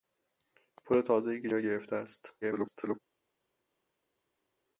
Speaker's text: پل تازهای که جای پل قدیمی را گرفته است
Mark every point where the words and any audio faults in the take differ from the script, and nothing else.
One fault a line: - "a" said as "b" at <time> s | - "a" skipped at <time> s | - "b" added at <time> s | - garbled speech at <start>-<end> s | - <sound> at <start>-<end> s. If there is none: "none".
- "جای پل قدیمی" skipped at 1.5 s
- garbled speech at 2.4-3.0 s